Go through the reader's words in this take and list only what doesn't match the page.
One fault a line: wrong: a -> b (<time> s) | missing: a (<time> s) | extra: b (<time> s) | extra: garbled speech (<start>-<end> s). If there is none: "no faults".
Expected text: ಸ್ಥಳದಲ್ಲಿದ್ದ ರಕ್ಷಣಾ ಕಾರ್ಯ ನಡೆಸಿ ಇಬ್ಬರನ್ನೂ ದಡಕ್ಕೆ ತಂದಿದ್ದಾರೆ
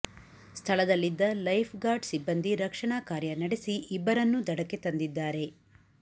extra: ಲೈಫ್ ಗಾರ್ಡ್ ಸಿಬ್ಬಂದಿ (1.4 s)